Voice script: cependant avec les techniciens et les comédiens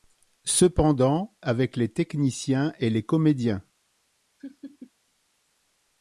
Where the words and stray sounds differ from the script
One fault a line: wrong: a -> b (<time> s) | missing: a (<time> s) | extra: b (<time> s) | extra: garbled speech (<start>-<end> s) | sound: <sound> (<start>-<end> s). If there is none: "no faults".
sound: laugh (4.4-4.9 s)